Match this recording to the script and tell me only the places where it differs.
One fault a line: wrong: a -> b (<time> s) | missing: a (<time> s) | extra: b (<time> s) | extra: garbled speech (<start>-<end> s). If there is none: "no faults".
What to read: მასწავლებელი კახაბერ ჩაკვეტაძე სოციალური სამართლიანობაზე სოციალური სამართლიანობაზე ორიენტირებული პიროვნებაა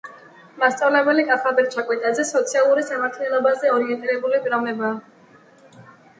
missing: სოციალური სამართლიანობაზე (3.7 s)